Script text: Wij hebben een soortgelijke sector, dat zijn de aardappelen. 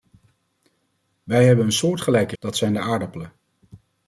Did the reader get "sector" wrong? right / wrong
wrong